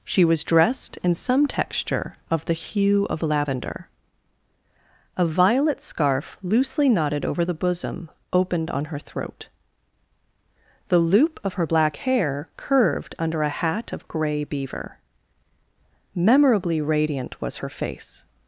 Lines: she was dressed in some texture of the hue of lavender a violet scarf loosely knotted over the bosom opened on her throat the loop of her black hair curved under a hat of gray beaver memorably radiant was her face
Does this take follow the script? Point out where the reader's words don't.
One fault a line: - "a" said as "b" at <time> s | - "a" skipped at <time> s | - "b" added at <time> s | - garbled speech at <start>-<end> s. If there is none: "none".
none